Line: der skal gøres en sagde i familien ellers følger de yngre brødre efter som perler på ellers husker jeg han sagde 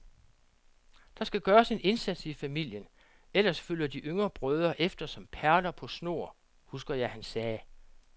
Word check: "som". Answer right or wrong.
right